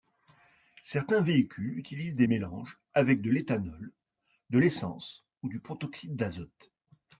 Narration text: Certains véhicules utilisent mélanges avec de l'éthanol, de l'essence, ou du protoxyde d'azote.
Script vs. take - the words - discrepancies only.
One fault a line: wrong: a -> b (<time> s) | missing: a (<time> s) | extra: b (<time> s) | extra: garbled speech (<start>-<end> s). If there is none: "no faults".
extra: des (2.1 s)